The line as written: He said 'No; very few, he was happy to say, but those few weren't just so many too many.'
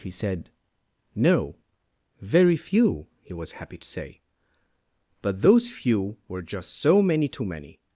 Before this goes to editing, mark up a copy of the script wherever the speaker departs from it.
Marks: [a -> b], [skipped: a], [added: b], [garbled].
He said 'No; very few, he was happy to say, but those few [weren't -> were] just so many too many.'